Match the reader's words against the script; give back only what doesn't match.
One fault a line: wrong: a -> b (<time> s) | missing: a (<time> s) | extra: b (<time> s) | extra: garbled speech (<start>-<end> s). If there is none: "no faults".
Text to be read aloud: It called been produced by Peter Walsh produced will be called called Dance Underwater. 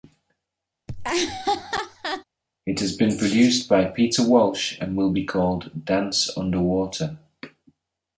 wrong: called -> has (2.8 s)
wrong: produced -> and (4.8 s)
missing: called (5.8 s)